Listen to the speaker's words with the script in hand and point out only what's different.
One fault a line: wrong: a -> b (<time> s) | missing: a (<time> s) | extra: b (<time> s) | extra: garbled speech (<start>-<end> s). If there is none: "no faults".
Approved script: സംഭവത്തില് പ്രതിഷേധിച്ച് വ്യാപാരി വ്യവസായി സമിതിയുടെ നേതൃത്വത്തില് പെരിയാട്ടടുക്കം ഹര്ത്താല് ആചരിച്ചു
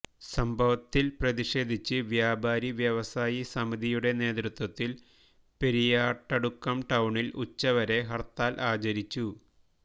extra: ടൌണില് ഉച്ചവരെ (6.9 s)